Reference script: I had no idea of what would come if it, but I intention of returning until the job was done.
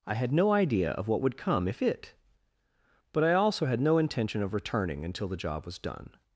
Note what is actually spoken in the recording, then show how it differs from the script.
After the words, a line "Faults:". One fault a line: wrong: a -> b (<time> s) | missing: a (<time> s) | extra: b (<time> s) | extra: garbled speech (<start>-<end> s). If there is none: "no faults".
I had no idea of what would come if it, but I also had no intention of returning until the job was done.
Faults:
extra: also had no (3.3 s)